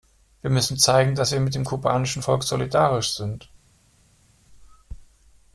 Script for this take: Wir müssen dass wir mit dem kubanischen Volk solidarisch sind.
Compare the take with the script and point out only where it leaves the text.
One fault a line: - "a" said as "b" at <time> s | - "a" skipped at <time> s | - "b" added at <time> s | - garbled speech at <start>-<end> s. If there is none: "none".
- "zeigen" added at 0.8 s